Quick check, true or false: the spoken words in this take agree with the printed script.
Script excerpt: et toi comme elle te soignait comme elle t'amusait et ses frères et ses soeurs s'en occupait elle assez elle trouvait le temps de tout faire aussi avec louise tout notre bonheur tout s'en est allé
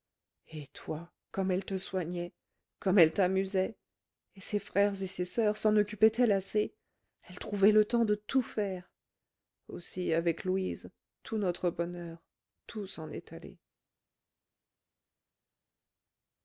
true